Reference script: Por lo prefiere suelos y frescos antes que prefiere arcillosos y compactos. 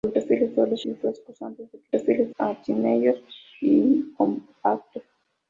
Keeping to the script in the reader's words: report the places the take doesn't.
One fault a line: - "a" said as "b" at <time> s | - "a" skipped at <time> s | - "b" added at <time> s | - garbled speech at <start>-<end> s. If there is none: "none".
none